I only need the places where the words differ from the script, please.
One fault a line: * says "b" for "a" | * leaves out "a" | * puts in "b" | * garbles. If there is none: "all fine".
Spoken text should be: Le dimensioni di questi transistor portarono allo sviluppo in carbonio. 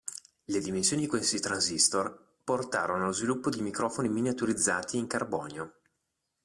* puts in "di microfoni miniaturizzati"